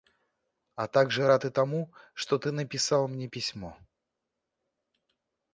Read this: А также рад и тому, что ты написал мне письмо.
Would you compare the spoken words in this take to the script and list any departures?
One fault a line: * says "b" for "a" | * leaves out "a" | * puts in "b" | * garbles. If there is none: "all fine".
all fine